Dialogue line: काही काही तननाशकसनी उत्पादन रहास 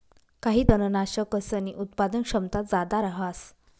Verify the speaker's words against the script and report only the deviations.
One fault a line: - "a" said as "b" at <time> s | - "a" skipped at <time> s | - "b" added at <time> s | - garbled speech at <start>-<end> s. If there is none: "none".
- "काही" skipped at 0.6 s
- "क्षमता जादा" added at 2.2 s